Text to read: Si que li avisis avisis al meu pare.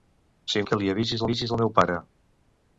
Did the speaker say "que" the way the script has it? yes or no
yes